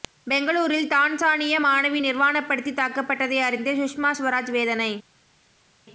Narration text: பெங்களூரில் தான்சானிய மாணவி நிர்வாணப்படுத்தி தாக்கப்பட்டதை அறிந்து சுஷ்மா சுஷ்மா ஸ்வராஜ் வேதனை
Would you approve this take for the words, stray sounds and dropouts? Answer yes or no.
no